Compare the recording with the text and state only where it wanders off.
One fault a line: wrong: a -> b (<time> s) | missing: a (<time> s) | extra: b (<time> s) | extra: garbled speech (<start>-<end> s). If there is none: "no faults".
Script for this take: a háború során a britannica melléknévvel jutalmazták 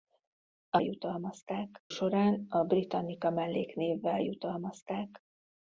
wrong: háború -> jutalmazták (0.8 s)